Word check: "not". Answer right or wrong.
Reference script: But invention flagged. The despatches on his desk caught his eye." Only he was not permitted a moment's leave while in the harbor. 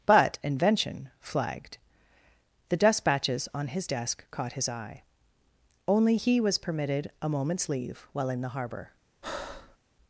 wrong